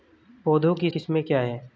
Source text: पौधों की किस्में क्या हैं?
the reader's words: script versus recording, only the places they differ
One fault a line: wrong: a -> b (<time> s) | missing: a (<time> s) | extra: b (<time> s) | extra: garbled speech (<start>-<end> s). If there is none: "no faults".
no faults